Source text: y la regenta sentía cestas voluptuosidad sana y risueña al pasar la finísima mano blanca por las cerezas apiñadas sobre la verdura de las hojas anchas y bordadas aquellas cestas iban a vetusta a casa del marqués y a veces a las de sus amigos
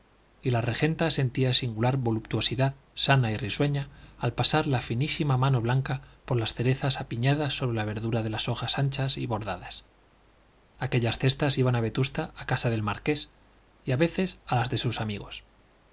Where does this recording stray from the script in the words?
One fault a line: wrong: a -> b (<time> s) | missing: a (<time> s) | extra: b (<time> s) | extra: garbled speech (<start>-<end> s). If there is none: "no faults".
wrong: cestas -> singular (1.5 s)